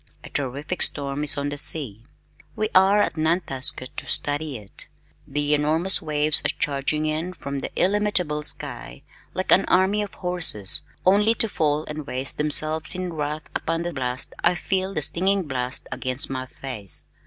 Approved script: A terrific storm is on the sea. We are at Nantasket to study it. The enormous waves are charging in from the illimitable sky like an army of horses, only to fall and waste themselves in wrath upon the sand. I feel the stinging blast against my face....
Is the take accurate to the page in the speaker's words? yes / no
no